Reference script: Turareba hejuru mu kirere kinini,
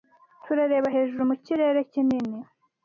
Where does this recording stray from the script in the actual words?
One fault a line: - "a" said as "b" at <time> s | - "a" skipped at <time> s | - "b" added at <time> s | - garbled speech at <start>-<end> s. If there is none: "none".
none